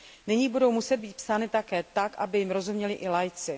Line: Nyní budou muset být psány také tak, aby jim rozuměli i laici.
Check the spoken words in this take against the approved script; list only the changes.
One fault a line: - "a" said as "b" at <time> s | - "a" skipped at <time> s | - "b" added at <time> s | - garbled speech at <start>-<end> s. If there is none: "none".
none